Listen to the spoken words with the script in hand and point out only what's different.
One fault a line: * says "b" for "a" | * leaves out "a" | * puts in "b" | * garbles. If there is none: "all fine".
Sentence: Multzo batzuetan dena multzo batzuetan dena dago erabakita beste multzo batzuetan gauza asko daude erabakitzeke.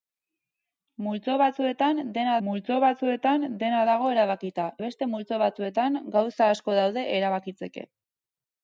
all fine